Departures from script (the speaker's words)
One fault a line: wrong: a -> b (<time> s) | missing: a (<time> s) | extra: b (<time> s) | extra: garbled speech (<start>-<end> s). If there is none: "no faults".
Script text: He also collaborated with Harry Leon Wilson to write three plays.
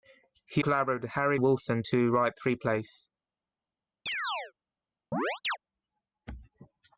missing: also (0.6 s)
missing: Leon (1.4 s)